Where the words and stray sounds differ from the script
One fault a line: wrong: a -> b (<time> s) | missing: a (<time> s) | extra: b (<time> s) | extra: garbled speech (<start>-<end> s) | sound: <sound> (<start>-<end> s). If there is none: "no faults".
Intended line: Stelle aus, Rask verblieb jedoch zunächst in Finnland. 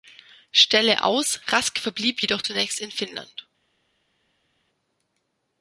no faults